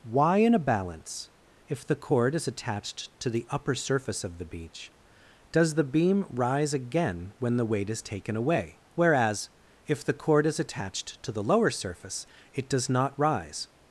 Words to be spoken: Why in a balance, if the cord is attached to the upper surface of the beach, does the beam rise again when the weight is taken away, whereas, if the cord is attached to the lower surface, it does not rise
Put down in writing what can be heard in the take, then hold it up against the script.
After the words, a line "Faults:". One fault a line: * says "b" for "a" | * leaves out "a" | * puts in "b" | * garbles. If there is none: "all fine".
Why in a balance, if the cord is attached to the upper surface of the beach, does the beam rise again when the weight is taken away, whereas, if the cord is attached to the lower surface, it does not rise
Faults:
all fine